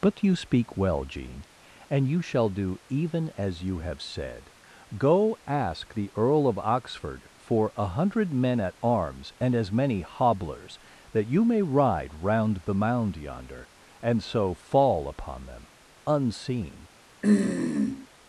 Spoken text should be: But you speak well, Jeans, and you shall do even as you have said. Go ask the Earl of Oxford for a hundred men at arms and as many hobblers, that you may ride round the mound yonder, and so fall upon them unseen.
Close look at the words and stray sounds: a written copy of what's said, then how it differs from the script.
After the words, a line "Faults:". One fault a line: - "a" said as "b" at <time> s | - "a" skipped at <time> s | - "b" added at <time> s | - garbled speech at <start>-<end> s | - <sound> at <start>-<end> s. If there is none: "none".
But you speak well, Jean, and you shall do even as you have said. Go ask the Earl of Oxford for a hundred men at arms and as many hobblers, that you may ride round the mound yonder, and so fall upon them unseen.
Faults:
- "Jeans" said as "Jean" at 1.0 s
- throat clearing at 17.2-18.1 s